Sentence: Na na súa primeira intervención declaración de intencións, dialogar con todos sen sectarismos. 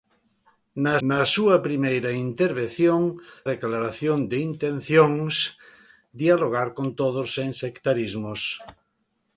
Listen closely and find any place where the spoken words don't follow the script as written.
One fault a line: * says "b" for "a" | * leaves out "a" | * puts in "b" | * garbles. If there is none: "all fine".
all fine